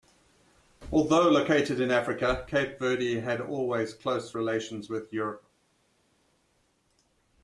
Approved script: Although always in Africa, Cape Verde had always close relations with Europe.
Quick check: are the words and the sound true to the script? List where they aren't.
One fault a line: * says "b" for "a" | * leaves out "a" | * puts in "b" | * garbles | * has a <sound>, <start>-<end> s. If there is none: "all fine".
* says "located" for "always"